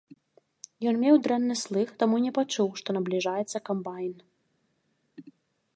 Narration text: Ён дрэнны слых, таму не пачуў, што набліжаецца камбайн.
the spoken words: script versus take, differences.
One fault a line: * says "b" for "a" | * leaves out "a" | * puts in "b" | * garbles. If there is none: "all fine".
* puts in "меў"